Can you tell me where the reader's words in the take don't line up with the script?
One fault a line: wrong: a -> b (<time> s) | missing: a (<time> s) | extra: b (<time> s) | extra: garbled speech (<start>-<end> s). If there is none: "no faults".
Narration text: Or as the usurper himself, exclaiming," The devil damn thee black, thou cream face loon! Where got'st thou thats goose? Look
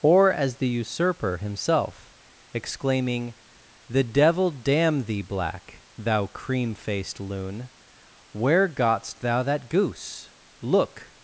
wrong: face -> faced (6.8 s)
wrong: thats -> that (9.4 s)